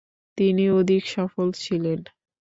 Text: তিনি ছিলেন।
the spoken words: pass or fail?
fail